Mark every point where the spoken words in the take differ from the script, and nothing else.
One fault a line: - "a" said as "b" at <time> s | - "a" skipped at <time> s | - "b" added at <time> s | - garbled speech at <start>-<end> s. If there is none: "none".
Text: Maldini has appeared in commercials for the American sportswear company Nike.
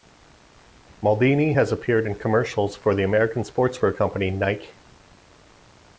none